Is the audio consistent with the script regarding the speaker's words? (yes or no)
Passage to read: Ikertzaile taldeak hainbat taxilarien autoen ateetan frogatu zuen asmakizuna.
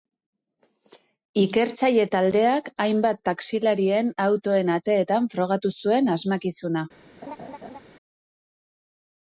yes